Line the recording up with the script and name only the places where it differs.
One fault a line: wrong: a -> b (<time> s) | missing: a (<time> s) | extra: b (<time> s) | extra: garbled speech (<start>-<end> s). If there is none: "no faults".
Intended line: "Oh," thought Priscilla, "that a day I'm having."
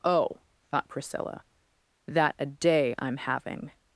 no faults